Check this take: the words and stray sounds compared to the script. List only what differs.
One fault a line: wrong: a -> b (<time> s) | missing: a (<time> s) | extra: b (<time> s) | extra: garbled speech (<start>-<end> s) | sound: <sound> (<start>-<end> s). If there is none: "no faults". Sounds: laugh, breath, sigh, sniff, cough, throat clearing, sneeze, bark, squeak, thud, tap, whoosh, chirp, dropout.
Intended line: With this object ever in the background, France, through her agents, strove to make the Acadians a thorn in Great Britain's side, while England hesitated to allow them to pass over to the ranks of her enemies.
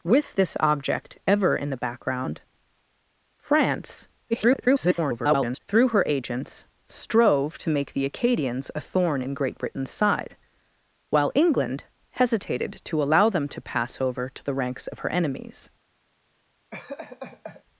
extra: garbled speech (4.3-5.6 s)
sound: laugh (16.7-17.6 s)